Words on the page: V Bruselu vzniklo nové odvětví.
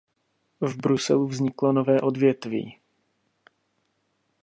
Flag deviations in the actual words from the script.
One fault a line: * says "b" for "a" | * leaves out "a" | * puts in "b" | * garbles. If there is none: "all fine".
all fine